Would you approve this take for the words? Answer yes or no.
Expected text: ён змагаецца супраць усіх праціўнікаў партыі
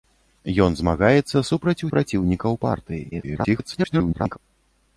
no